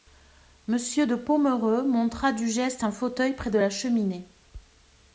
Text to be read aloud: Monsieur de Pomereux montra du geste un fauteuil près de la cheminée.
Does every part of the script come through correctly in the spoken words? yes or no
yes